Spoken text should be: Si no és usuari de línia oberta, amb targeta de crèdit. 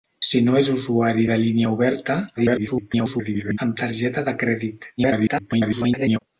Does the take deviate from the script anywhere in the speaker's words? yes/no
yes